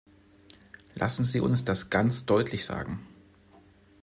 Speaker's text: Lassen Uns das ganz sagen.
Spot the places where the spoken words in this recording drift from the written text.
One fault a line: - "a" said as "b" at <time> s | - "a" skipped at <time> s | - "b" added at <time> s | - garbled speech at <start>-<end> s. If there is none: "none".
- "Sie" added at 1.2 s
- "deutlich" added at 2.2 s